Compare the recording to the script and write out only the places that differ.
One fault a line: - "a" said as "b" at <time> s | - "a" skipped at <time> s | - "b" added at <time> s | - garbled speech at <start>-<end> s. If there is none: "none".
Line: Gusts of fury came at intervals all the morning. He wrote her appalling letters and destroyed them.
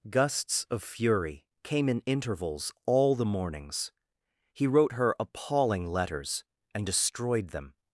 - "at" said as "in" at 1.9 s
- "morning" said as "mornings" at 3.2 s